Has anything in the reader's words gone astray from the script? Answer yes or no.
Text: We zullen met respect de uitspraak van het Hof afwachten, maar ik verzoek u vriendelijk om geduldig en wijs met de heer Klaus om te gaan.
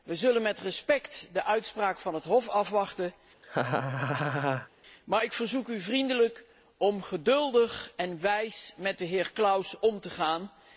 no